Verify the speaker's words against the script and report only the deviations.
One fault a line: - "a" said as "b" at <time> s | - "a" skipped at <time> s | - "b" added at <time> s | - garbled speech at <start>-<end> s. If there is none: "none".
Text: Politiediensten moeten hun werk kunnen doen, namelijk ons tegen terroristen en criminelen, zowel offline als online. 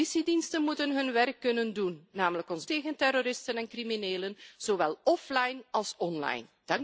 none